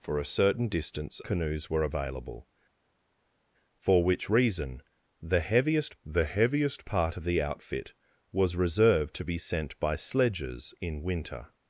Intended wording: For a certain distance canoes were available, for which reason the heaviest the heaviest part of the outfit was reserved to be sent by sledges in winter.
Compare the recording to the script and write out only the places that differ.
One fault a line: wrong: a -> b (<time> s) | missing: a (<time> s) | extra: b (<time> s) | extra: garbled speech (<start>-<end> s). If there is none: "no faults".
no faults